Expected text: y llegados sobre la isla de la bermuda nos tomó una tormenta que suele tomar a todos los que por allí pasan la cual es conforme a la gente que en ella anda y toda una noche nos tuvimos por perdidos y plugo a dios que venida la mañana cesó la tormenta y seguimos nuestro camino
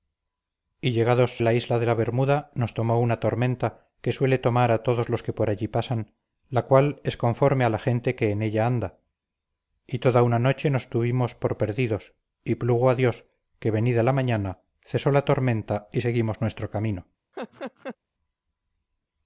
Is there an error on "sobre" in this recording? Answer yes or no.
yes